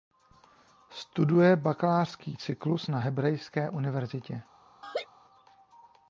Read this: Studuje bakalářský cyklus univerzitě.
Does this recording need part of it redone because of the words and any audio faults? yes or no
yes